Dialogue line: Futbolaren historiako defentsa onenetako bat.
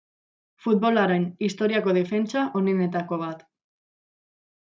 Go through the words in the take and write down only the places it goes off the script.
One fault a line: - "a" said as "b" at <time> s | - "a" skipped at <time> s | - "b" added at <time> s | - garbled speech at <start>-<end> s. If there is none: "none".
none